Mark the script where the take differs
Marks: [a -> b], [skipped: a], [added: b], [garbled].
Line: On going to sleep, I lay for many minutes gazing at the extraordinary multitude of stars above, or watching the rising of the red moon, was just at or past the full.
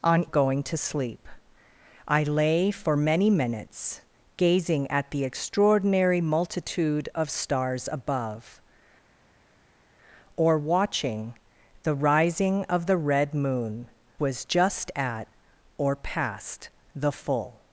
On going to sleep, I lay for many minutes gazing at the extraordinary multitude of stars above, or watching the rising of the red moon, was just at or past the full.